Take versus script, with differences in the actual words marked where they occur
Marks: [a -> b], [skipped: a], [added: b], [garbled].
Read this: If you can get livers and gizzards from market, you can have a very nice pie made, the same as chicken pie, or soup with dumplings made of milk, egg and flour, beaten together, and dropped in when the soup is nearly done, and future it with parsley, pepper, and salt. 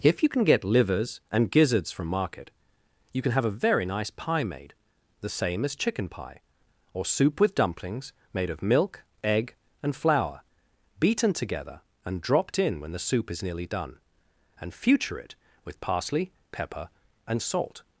If you can get livers and gizzards from market, you can have a very nice pie made, the same as chicken pie, or soup with dumplings made of milk, egg and flour, beaten together, and dropped in when the soup is nearly done, and future it with parsley, pepper, and salt.